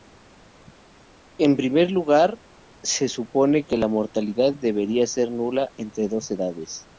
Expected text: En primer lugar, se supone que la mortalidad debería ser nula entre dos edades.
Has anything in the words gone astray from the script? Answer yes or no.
no